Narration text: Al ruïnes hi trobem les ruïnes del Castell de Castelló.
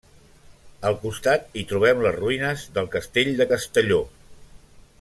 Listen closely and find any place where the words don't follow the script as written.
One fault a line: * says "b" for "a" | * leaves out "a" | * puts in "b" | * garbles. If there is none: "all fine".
* says "costat" for "ruïnes"